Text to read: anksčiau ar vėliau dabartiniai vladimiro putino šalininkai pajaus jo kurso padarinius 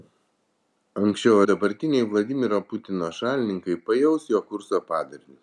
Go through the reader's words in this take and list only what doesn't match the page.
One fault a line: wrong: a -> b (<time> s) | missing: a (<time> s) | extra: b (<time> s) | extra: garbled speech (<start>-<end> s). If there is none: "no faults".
missing: ar vėliau (1.4 s)